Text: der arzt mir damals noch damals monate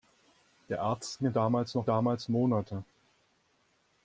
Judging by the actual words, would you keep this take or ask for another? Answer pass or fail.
pass